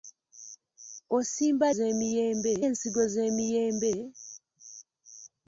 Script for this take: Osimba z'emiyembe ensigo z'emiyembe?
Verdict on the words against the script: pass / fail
pass